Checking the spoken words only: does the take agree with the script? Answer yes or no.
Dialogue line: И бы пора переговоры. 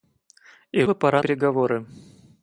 yes